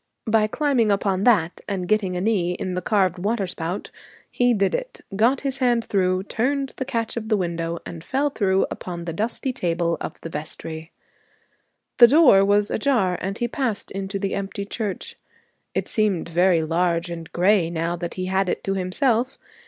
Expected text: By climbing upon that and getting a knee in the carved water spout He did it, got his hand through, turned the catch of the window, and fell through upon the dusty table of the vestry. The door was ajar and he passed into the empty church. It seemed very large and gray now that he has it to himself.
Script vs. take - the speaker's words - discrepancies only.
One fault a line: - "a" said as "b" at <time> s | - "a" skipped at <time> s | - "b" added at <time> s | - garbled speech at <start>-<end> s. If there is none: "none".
- "has" said as "had" at 18.2 s